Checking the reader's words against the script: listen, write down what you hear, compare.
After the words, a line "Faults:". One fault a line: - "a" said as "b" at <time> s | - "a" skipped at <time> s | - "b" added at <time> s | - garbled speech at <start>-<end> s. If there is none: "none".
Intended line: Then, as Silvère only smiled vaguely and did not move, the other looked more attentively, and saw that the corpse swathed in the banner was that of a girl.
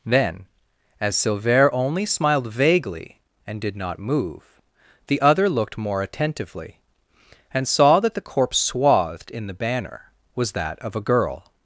Then, as Silvère only smiled vaguely and did not move, the other looked more attentively, and saw that the corpse swathed in the banner was that of a girl.
Faults:
none